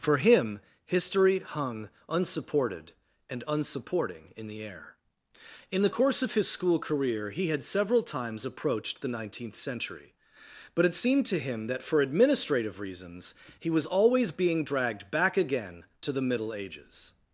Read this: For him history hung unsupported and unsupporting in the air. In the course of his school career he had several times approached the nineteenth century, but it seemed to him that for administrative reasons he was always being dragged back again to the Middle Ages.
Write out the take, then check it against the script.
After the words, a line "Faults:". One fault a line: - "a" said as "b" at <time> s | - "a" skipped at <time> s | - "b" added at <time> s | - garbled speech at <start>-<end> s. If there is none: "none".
For him history hung unsupported and unsupporting in the air. In the course of his school career he had several times approached the nineteenth century, but it seemed to him that for administrative reasons he was always being dragged back again to the Middle Ages.
Faults:
none